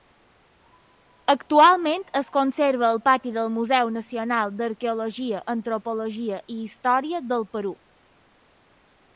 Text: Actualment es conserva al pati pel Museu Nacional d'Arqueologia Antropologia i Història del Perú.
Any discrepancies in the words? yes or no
yes